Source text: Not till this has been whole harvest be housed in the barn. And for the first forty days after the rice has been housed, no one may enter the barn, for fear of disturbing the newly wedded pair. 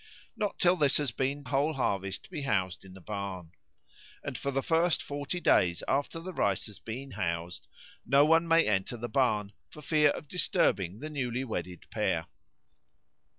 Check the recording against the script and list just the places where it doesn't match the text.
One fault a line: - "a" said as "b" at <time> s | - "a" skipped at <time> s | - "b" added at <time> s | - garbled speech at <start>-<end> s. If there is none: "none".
none